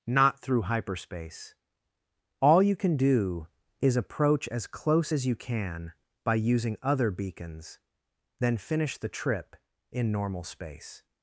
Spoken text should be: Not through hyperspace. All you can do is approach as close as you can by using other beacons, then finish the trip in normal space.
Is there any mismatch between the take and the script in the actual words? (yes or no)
no